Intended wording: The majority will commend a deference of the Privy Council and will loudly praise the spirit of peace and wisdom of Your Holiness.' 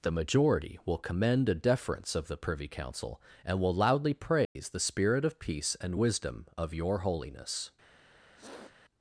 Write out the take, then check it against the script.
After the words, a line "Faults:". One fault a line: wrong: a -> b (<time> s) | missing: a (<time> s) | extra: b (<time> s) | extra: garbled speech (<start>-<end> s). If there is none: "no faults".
The majority will commend a deference of the Privy Council and will loudly praise the spirit of peace and wisdom of Your Holiness.'
Faults:
no faults